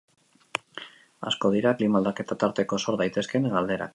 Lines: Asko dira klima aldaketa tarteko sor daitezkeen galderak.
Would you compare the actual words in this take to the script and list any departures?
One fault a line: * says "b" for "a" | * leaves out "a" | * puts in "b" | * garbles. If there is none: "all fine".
all fine